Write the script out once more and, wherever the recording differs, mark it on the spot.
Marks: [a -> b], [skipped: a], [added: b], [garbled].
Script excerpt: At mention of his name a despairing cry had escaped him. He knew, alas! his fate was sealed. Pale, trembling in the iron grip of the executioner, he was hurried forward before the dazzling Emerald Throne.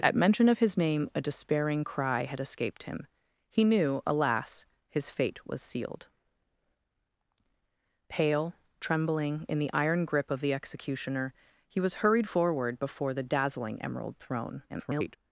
At mention of his name a despairing cry had escaped him. He knew, alas! his fate was sealed. Pale, trembling in the iron grip of the executioner, he was hurried forward before the dazzling Emerald Throne. [garbled]